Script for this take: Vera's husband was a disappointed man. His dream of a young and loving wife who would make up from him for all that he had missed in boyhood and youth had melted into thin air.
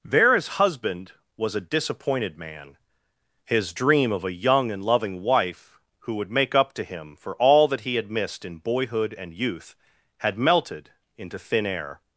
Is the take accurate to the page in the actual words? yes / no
no